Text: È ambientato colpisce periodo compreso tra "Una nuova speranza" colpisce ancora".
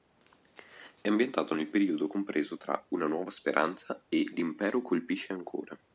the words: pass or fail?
fail